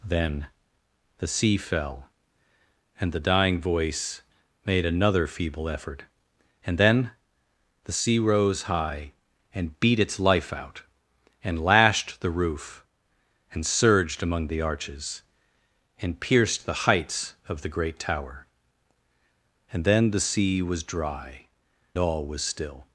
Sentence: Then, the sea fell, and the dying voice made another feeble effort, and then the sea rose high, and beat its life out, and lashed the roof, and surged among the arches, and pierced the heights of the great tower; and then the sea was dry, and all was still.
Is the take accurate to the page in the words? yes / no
no